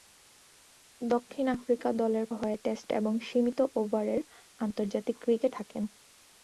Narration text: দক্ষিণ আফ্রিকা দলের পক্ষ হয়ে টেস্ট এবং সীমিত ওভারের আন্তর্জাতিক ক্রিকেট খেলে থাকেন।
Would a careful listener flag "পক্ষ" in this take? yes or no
yes